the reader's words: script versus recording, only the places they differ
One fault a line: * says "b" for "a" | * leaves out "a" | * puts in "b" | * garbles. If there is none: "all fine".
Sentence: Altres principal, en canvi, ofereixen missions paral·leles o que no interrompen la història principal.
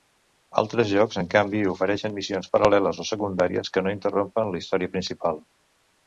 * says "jocs" for "principal"
* puts in "secundàries"